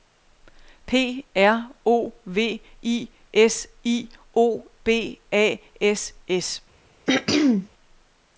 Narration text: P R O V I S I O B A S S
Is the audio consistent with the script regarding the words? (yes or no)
yes